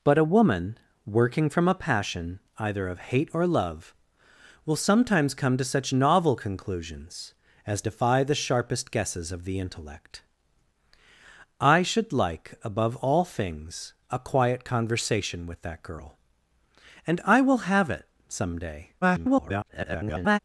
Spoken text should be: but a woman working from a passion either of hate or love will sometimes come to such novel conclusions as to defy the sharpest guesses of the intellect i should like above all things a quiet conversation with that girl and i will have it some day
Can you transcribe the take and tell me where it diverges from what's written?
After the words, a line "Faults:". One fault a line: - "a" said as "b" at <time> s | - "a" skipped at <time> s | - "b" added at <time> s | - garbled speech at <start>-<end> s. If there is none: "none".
but a woman working from a passion either of hate or love will sometimes come to such novel conclusions as defy the sharpest guesses of the intellect i should like above all things a quiet conversation with that girl and i will have it some day [garbled]
Faults:
- "to" skipped at 7.8 s
- garbled speech at 19.0-20.4 s